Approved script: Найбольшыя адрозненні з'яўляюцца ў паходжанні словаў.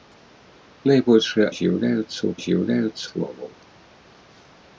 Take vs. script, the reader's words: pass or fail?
fail